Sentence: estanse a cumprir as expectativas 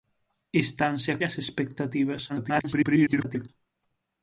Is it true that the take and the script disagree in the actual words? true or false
true